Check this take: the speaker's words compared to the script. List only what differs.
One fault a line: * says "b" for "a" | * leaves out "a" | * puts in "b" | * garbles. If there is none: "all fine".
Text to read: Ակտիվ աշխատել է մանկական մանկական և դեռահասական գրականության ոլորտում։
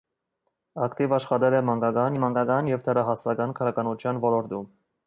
all fine